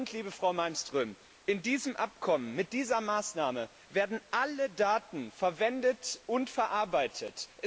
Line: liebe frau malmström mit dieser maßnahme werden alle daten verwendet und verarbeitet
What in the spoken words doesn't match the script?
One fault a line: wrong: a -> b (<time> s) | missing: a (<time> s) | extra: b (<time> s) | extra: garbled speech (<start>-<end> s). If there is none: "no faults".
extra: in diesem abkommen (1.4 s)